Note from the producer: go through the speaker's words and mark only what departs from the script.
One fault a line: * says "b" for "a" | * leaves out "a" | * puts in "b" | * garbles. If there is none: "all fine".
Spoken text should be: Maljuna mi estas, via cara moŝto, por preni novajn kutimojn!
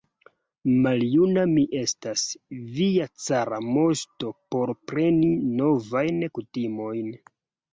all fine